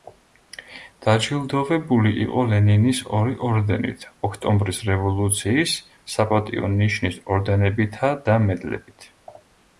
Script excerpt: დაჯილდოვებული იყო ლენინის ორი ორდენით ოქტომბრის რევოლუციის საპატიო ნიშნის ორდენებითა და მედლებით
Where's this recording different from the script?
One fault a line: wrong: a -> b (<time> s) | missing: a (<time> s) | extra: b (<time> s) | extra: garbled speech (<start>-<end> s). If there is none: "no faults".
no faults